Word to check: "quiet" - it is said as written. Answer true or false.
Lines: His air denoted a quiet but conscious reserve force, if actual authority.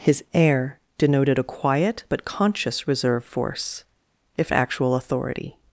true